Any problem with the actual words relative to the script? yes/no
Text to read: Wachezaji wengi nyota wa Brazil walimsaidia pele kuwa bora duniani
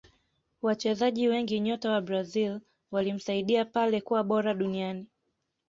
no